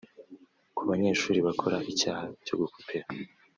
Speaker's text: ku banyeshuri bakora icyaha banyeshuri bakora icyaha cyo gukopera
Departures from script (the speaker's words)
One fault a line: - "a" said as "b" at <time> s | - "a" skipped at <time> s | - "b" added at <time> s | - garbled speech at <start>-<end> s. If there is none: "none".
- "banyeshuri bakora icyaha" skipped at 2.2 s